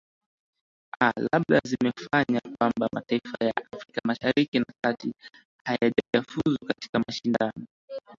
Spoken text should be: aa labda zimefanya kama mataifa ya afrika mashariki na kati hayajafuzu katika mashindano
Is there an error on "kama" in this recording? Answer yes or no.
yes